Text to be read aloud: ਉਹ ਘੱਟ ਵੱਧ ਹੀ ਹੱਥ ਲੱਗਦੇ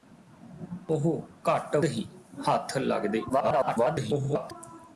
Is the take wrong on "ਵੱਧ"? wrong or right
wrong